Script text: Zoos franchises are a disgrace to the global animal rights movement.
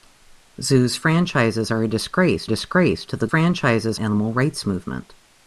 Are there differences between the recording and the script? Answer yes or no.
yes